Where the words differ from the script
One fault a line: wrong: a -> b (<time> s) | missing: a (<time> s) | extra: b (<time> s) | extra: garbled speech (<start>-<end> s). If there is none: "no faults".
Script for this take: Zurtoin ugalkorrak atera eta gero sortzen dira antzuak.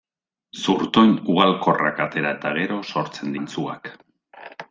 missing: dira (3.4 s)